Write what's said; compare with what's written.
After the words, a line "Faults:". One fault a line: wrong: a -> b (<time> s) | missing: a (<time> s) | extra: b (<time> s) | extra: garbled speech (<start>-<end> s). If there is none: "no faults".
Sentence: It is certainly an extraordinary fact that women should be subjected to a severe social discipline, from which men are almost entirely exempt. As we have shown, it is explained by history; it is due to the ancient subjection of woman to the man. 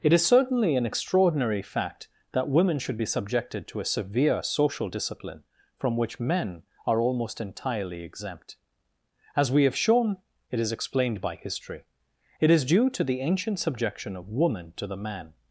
It is certainly an extraordinary fact that women should be subjected to a severe social discipline, from which men are almost entirely exempt. As we have shown, it is explained by history; it is due to the ancient subjection of woman to the man.
Faults:
no faults